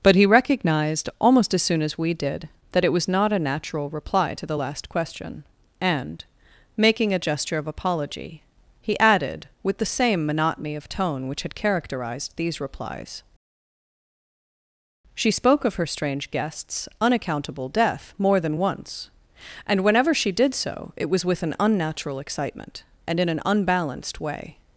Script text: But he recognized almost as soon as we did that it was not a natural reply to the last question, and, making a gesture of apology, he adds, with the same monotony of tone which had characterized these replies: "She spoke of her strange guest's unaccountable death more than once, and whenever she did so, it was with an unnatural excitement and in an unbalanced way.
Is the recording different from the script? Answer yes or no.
yes